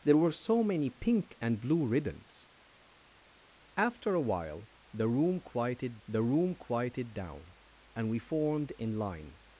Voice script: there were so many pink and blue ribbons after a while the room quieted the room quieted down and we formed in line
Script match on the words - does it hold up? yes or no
yes